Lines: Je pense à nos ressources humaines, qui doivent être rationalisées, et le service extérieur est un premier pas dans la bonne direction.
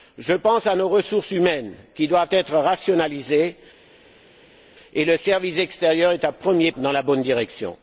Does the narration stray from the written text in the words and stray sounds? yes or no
yes